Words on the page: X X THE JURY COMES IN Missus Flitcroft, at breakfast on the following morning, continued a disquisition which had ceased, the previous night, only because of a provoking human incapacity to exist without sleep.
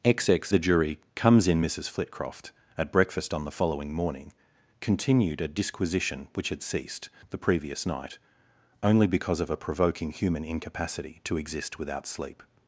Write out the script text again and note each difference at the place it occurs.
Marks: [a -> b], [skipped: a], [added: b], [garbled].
X X THE JURY COMES IN Missus Flitcroft, at breakfast on the following morning, continued a disquisition which had ceased, the previous night, only because of a provoking human incapacity to exist without sleep.